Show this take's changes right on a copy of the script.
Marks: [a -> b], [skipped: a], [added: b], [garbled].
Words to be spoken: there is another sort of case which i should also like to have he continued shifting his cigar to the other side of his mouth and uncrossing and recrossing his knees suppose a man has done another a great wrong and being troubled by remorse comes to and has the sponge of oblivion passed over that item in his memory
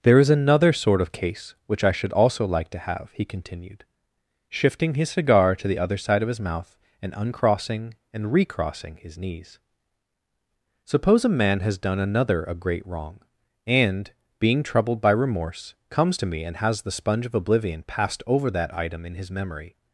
there is another sort of case which i should also like to have he continued shifting his cigar to the other side of his mouth and uncrossing and recrossing his knees suppose a man has done another a great wrong and being troubled by remorse comes to [added: me] and has the sponge of oblivion passed over that item in his memory